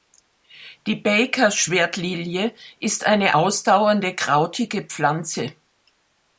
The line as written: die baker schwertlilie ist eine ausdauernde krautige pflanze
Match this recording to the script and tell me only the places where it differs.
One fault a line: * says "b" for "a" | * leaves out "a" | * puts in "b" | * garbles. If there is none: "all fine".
all fine